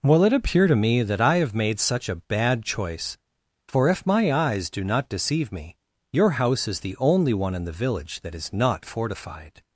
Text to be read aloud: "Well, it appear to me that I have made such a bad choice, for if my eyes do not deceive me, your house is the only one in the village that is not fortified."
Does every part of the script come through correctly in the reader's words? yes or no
yes